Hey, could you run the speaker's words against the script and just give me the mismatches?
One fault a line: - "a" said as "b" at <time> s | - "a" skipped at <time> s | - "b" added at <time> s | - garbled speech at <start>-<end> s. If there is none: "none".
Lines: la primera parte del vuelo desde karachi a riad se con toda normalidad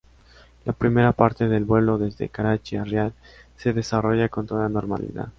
- "desarrolla" added at 3.7 s